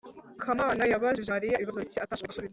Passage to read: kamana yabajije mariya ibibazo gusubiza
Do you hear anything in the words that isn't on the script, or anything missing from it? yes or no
yes